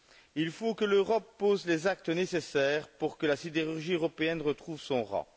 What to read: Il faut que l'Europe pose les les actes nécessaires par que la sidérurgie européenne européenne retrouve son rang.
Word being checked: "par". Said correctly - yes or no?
no